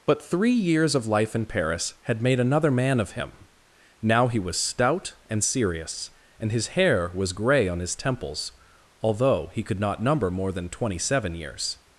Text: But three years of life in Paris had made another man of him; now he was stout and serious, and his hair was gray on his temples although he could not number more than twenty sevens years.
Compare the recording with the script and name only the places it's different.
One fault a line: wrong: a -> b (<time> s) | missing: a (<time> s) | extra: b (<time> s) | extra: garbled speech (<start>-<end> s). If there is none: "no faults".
wrong: sevens -> seven (11.0 s)